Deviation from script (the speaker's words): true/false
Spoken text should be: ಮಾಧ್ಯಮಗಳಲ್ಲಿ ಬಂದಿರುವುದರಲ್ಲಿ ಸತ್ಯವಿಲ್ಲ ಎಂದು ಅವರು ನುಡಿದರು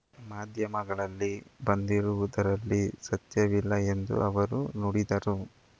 false